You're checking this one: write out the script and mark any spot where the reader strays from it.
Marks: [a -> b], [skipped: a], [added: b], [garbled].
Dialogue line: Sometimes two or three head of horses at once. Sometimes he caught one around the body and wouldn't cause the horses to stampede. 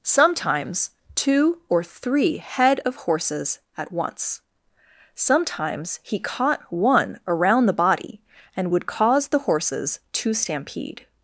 Sometimes two or three head of horses at once. Sometimes he caught one around the body and [wouldn't -> would] cause the horses to stampede.